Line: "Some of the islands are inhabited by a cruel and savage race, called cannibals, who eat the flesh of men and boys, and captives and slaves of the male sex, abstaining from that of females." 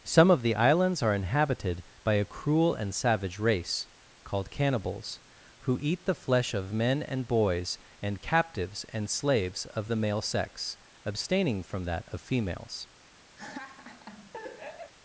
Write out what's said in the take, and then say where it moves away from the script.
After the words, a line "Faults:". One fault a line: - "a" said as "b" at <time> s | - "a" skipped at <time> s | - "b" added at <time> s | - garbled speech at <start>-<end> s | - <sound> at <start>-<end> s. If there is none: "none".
"Some of the islands are inhabited by a cruel and savage race, called cannibals, who eat the flesh of men and boys, and captives and slaves of the male sex, abstaining from that of females."
Faults:
- laugh at 13.4-14.9 s